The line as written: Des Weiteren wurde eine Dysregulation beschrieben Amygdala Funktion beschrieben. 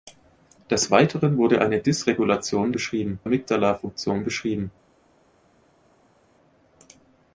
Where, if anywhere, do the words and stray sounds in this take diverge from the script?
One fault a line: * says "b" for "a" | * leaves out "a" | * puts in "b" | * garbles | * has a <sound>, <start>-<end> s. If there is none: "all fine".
all fine